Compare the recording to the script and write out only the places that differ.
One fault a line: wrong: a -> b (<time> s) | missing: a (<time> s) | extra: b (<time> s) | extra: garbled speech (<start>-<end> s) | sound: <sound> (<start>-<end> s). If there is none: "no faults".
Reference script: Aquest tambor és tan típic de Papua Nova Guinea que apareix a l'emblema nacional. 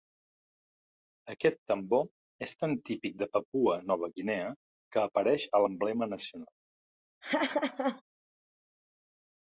sound: laugh (7.2-8.0 s)